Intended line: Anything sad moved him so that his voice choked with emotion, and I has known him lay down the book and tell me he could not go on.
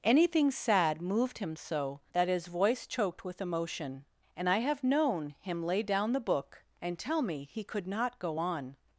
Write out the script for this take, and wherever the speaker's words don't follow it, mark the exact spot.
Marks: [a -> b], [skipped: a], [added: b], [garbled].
Anything sad moved him so that his voice choked with emotion, and I [has -> have] known him lay down the book and tell me he could not go on.